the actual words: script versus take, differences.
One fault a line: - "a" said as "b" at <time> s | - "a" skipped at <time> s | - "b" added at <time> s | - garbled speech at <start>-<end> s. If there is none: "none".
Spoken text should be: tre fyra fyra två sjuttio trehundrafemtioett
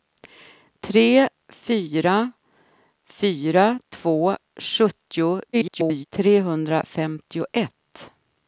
- garbled speech at 5.5-6.0 s